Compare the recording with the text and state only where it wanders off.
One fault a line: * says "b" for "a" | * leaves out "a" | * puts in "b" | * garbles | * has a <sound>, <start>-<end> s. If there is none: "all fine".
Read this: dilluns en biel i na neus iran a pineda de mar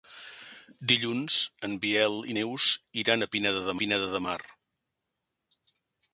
* leaves out "na"
* puts in "pineda de"